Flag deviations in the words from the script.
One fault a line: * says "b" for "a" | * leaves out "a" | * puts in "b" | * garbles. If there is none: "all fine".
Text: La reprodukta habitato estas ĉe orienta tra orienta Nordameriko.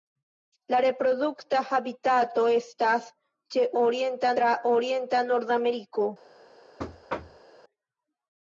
all fine